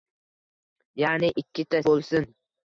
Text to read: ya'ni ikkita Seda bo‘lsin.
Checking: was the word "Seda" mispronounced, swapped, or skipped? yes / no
yes